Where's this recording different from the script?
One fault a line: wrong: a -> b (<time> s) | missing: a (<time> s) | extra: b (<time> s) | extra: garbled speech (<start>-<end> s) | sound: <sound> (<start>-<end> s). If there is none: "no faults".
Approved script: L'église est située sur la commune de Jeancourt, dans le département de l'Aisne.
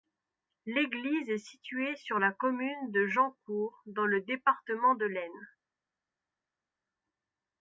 no faults